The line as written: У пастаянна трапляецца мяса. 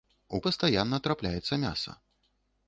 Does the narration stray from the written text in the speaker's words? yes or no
no